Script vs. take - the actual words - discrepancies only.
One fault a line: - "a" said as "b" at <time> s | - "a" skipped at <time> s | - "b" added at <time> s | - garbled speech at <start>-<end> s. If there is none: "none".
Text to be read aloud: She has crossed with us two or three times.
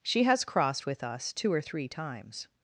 none